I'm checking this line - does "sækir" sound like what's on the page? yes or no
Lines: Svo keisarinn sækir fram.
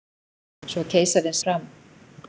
no